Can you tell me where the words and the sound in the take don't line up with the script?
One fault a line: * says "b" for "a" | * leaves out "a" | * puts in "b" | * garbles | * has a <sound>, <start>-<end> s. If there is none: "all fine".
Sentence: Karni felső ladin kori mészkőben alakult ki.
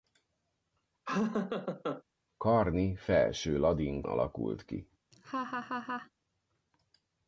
* has a laugh, 1.1-2.0 s
* leaves out "kori mészkőben"
* has a laugh, 5.1-6.1 s